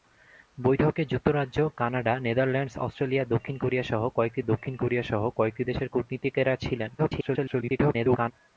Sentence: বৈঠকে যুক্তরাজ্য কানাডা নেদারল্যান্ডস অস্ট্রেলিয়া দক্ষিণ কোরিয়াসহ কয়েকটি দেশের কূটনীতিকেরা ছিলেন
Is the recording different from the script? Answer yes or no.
yes